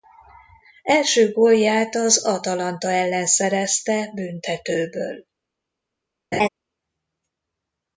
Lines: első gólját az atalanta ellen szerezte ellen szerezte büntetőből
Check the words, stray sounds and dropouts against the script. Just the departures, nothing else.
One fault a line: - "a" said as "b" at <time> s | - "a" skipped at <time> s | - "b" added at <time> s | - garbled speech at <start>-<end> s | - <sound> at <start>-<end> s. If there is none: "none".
- "ellen szerezte" skipped at 4.1 s
- laugh at 6.3-6.5 s